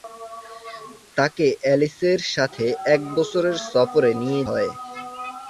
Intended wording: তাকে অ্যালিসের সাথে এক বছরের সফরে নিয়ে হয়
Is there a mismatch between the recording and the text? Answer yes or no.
no